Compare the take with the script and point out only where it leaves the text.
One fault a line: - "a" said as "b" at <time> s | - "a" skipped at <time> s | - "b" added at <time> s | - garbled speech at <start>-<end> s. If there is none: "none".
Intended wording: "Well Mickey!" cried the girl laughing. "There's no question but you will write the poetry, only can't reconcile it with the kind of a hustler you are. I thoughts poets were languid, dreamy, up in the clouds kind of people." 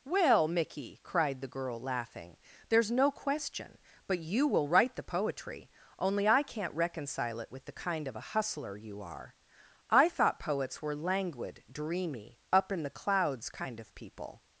- "I" added at 6.3 s
- "thoughts" said as "thought" at 10.1 s